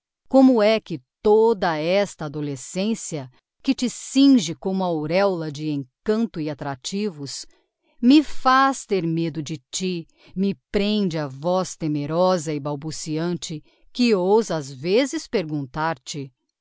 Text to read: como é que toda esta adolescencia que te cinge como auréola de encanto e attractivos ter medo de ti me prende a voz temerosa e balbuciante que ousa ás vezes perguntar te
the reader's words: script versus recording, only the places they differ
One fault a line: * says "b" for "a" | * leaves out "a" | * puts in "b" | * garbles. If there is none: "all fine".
* puts in "me faz"